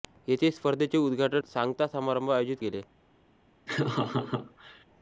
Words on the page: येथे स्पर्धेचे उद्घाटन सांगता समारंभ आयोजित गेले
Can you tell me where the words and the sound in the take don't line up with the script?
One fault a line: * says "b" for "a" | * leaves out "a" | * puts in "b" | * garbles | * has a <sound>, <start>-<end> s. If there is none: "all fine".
* has a laugh, 3.7-4.8 s